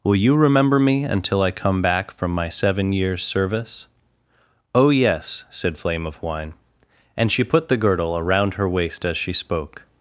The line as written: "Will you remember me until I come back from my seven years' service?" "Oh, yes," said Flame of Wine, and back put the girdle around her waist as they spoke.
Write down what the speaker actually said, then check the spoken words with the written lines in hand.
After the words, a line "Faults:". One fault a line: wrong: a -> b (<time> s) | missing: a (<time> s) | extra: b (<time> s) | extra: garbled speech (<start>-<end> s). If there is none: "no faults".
"Will you remember me until I come back from my seven years' service?" "Oh, yes," said Flame of Wine, and she put the girdle around her waist as she spoke.
Faults:
wrong: back -> she (7.3 s)
wrong: they -> she (9.2 s)